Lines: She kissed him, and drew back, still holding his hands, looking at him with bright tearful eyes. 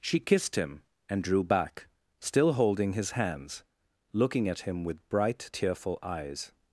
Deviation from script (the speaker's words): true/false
false